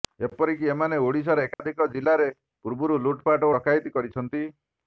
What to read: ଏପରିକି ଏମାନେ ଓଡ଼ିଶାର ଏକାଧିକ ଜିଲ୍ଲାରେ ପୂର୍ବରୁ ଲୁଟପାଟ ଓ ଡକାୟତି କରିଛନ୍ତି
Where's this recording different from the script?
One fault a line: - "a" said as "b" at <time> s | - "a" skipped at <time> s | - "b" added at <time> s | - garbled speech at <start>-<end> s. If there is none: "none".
- "ଓ" skipped at 3.5 s